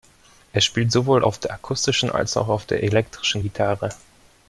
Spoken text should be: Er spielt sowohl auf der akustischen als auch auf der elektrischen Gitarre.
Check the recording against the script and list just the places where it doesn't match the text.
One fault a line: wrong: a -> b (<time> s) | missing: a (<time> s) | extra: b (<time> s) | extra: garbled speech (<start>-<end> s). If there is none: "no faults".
no faults